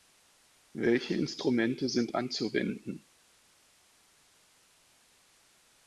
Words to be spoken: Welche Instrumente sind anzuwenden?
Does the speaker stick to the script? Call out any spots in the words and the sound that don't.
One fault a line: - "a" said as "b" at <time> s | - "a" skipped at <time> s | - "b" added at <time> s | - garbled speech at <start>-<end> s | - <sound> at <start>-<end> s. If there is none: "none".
none